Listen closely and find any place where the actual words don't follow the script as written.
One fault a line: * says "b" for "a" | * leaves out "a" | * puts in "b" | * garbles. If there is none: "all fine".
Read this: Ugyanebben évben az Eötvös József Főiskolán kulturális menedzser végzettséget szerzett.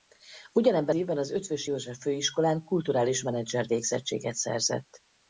all fine